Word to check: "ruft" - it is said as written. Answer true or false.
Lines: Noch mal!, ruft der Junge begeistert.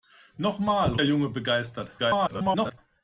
false